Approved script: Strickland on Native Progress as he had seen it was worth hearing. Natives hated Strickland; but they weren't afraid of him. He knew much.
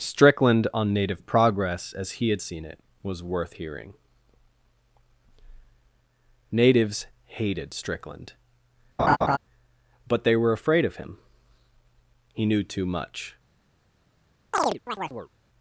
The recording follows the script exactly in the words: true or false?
false